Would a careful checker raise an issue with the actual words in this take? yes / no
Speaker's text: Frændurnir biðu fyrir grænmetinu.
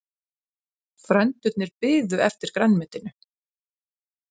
yes